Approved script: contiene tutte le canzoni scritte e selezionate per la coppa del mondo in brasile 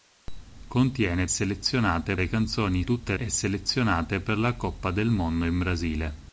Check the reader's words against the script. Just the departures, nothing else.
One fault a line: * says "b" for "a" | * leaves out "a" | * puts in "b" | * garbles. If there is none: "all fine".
* says "selezionate" for "tutte"
* says "tutte" for "scritte"